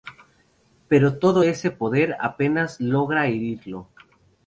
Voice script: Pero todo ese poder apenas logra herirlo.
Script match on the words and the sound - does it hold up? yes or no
yes